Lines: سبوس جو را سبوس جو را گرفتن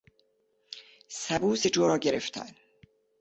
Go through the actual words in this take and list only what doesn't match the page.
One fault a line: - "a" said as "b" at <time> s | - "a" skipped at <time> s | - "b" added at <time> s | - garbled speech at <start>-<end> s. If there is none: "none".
- "سبوس جو را" skipped at 2.0 s